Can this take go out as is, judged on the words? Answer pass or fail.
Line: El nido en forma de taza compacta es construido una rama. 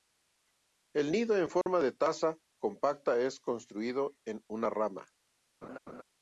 fail